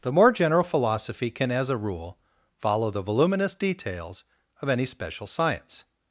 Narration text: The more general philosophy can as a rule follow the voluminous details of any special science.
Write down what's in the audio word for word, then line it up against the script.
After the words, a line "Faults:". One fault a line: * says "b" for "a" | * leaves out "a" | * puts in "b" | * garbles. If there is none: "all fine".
The more general philosophy can as a rule follow the voluminous details of any special science.
Faults:
all fine